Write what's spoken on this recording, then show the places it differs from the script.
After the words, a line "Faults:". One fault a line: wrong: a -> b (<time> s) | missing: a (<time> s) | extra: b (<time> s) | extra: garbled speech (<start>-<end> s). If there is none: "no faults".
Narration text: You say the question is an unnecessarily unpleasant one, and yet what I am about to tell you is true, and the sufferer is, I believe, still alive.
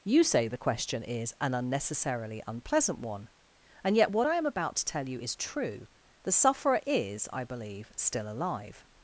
You say the question is an unnecessarily unpleasant one, and yet what I am about to tell you is true, the sufferer is, I believe, still alive.
Faults:
missing: and (5.9 s)